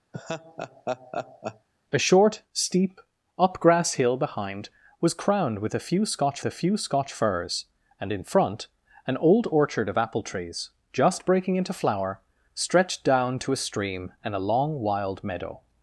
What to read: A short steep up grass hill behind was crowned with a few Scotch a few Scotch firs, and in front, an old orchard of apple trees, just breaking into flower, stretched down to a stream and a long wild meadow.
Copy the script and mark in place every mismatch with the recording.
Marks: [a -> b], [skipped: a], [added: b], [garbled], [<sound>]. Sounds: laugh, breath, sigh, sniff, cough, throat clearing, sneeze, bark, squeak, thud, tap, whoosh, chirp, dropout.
[laugh] A short steep up grass hill behind was crowned with a few Scotch a few Scotch firs, and in front, an old orchard of apple trees, just breaking into flower, stretched down to a stream and a long wild meadow.